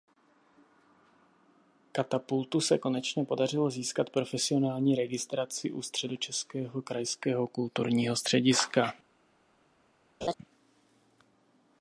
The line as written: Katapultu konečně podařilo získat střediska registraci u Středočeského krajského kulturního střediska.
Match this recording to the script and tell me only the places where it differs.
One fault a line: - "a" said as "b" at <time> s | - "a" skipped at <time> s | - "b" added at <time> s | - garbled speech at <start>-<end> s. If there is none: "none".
- "se" added at 2.6 s
- "střediska" said as "profesionální" at 4.1 s